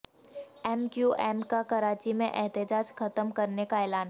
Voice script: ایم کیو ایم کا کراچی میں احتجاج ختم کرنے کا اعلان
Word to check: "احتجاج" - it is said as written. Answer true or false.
true